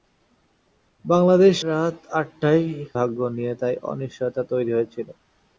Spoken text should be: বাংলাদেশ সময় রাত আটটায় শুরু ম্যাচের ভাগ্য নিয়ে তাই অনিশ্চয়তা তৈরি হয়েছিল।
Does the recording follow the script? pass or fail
fail